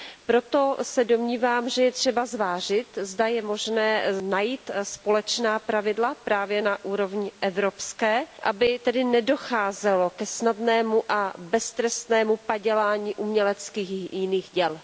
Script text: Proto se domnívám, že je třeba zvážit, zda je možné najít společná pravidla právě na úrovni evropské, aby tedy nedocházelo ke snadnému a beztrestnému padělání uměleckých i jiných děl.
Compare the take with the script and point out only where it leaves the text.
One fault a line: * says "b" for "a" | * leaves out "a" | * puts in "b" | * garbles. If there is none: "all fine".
all fine